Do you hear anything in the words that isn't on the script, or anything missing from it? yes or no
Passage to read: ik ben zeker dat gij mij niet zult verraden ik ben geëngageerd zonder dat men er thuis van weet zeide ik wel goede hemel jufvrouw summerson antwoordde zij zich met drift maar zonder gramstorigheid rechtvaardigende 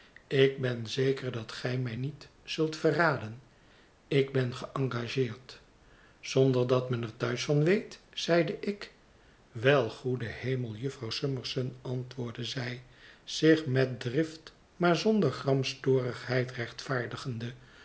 no